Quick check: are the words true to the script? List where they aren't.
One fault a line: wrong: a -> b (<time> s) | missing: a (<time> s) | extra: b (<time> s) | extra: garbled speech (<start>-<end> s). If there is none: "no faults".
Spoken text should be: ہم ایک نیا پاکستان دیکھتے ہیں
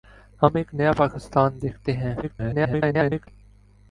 extra: garbled speech (2.2-3.3 s)